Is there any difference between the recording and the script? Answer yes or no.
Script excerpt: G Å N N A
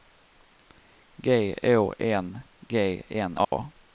yes